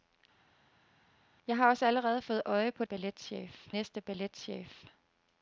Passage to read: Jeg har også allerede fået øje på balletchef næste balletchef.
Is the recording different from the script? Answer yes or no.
no